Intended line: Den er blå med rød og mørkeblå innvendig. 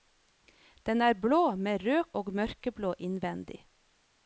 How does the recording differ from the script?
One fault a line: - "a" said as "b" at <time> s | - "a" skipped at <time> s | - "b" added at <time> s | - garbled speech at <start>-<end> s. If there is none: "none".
none